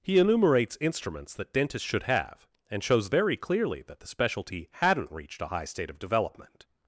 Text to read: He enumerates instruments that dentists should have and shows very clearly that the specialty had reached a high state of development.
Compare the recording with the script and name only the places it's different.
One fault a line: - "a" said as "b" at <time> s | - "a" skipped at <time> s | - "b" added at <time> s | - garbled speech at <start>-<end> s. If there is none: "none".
- "had" said as "hadn't" at 4.7 s